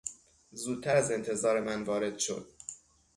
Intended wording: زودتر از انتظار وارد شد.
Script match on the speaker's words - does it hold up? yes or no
no